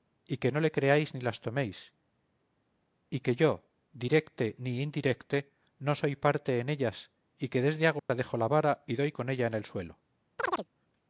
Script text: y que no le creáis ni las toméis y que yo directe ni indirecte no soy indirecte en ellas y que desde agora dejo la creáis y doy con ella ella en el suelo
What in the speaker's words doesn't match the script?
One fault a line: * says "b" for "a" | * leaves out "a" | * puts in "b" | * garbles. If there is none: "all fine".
* says "parte" for "indirecte"
* says "vara" for "creáis"
* leaves out "ella"